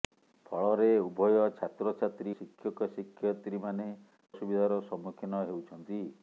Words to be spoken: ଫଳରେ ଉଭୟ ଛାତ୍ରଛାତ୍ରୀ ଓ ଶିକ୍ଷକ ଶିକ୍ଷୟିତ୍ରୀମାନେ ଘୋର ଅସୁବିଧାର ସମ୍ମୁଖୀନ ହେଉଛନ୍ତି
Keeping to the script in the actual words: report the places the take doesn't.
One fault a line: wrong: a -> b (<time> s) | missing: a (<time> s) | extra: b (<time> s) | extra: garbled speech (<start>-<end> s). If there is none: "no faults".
missing: ଓ (2.4 s)
missing: ଘୋର (3.9 s)